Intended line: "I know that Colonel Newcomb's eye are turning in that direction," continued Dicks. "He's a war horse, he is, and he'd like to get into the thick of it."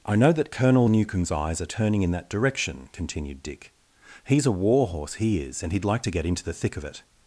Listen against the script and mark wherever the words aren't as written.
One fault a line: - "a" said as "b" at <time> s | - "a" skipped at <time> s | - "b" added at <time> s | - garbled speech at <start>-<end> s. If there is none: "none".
- "eye" said as "eyes" at 1.3 s
- "Dicks" said as "Dick" at 3.4 s